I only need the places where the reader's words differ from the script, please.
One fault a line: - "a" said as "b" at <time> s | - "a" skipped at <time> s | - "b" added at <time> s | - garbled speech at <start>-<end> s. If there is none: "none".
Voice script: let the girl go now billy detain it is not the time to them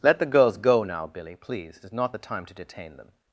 - "girl" said as "girls" at 0.2 s
- "detain" said as "please" at 1.4 s
- "detain" added at 2.5 s